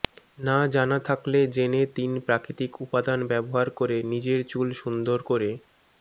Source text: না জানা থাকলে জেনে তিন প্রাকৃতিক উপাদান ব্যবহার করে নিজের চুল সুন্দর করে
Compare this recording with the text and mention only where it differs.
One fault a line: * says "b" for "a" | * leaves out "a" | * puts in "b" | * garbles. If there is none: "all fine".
all fine